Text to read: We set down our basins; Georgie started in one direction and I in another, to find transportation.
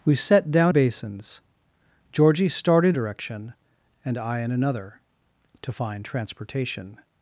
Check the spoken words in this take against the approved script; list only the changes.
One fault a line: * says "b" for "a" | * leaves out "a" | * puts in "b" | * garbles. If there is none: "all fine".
* leaves out "our"
* leaves out "in one"